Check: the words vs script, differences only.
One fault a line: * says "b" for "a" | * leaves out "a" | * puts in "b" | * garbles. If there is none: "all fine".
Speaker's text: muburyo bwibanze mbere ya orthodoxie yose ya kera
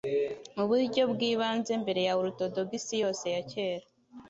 all fine